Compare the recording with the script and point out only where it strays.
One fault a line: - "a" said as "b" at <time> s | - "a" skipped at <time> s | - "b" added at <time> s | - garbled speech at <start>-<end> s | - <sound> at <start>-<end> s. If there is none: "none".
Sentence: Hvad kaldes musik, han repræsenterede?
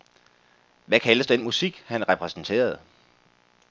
- "den" added at 1.2 s